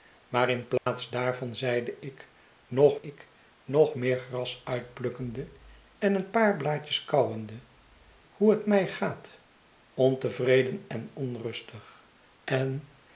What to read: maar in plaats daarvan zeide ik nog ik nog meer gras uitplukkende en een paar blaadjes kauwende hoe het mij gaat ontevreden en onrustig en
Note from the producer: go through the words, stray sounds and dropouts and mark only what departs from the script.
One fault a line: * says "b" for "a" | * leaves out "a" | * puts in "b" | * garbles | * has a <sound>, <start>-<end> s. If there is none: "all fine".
* has a dropout, 0.8-0.9 s